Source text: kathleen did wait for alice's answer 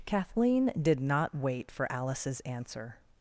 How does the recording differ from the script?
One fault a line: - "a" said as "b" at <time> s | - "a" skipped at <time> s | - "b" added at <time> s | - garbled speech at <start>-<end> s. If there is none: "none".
- "not" added at 1.0 s